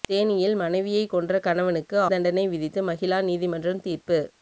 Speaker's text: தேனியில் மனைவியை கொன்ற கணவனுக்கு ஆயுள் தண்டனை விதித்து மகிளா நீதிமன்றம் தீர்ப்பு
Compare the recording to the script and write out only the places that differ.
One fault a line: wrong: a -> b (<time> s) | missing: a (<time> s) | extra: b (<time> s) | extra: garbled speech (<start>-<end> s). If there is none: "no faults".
missing: ஆயுள் (2.0 s)